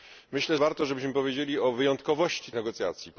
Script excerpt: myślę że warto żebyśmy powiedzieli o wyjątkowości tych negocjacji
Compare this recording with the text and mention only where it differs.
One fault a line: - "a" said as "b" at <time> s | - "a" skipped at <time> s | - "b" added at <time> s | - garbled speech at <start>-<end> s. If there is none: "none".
- "że" skipped at 0.6 s
- "tych" skipped at 2.5 s